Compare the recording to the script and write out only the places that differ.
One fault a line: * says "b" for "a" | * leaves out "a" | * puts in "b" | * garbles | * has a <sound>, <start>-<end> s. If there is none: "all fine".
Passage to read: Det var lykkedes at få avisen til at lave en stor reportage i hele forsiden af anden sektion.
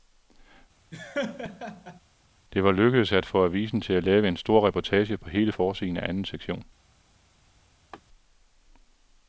* has a laugh, 0.9-2.0 s
* says "på" for "i"
* has a laugh, 7.9-8.0 s